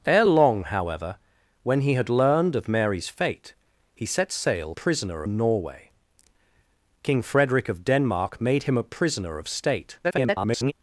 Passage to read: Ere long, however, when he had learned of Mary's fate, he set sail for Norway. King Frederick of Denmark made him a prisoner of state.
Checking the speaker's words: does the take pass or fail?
fail